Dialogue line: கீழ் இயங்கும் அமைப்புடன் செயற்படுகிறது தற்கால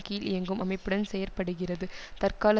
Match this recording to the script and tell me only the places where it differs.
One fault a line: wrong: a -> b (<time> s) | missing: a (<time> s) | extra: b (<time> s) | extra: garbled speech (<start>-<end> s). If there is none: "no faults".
no faults